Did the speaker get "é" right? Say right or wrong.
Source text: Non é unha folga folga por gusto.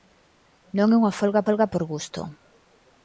right